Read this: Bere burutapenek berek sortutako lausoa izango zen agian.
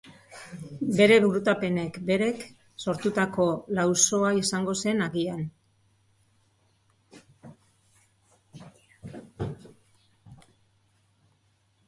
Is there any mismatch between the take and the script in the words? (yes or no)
no